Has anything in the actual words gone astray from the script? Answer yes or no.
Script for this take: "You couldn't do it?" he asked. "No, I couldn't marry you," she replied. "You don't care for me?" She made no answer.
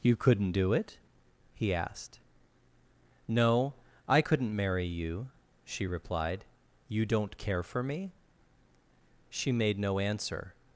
no